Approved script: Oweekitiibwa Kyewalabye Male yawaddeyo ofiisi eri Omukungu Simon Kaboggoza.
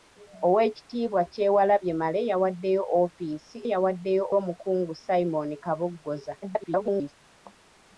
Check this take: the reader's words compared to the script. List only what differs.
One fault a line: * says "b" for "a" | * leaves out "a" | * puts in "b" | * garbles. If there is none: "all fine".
* says "yawaddeyo" for "eri"
* garbles